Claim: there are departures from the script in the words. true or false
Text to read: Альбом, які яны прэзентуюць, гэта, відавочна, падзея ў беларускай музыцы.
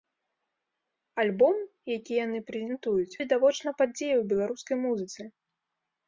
true